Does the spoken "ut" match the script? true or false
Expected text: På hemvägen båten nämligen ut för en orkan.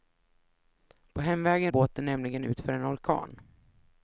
true